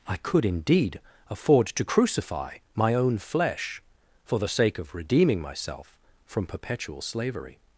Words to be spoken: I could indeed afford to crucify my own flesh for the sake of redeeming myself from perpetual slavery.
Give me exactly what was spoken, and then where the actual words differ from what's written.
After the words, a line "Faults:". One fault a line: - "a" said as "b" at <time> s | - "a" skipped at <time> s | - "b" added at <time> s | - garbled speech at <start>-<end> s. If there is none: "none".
I could indeed afford to crucify my own flesh for the sake of redeeming myself from perpetual slavery.
Faults:
none